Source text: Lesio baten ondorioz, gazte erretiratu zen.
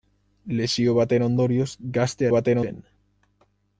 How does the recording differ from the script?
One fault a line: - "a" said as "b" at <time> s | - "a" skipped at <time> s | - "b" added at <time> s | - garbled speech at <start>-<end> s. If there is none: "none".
- "erretiratu" said as "baten" at 2.3 s